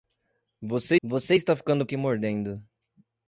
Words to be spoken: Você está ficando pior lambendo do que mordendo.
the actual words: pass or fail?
fail